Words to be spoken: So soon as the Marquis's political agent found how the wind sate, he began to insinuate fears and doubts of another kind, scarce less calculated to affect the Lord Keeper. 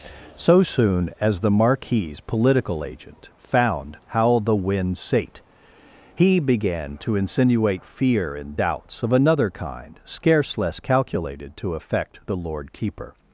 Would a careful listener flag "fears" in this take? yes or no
yes